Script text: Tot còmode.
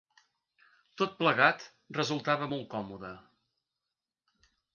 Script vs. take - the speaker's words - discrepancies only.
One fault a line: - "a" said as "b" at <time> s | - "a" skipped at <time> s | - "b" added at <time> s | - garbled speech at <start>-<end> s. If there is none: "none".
- "plegat resultava molt" added at 1.2 s